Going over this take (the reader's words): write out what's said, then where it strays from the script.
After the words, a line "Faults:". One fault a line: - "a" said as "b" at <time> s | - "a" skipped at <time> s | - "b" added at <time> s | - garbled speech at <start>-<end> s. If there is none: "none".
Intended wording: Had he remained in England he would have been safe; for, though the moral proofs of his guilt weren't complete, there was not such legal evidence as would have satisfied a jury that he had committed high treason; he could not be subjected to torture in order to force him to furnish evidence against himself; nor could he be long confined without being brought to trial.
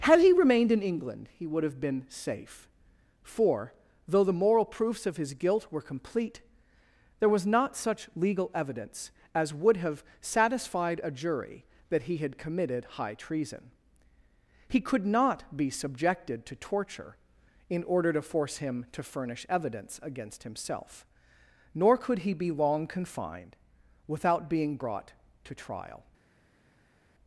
Had he remained in England he would have been safe; for, though the moral proofs of his guilt were complete, there was not such legal evidence as would have satisfied a jury that he had committed high treason; he could not be subjected to torture in order to force him to furnish evidence against himself; nor could he be long confined without being brought to trial.
Faults:
- "weren't" said as "were" at 5.7 s